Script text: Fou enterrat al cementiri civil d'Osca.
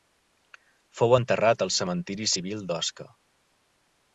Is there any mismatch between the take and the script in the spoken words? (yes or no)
no